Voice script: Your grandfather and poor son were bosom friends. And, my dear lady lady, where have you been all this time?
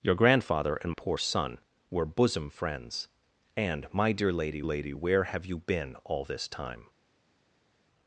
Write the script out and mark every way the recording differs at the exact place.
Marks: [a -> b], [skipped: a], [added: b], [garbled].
Your grandfather and poor son were bosom friends. And, my dear lady lady, where have you been all this time?